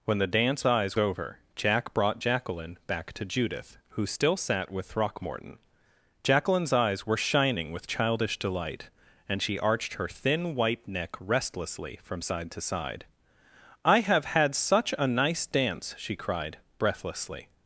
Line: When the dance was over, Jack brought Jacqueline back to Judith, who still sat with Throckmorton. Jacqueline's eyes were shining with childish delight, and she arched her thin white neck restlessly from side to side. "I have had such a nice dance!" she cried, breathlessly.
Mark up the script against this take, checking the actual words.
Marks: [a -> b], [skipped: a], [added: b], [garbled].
When the dance [was -> eyes] over, Jack brought Jacqueline back to Judith, who still sat with Throckmorton. Jacqueline's eyes were shining with childish delight, and she arched her thin white neck restlessly from side to side. "I have had such a nice dance!" she cried, breathlessly.